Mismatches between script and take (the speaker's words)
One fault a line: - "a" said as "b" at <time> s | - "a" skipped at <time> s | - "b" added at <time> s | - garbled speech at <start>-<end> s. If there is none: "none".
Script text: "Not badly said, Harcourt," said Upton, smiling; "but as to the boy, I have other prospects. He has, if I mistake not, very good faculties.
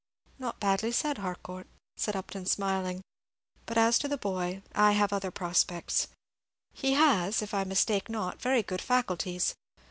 none